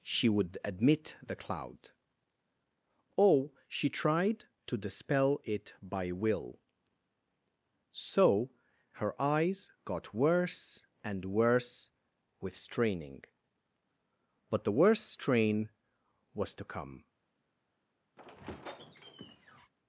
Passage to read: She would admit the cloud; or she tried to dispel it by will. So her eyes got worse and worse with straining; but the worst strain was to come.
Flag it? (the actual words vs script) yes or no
no